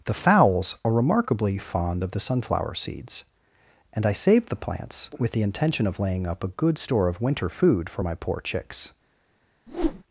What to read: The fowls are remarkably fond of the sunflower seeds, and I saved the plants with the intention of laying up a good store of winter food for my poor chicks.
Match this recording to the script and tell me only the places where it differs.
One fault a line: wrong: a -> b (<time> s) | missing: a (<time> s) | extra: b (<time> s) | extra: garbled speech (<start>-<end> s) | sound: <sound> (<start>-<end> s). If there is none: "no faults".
sound: whoosh (9.7-10.0 s)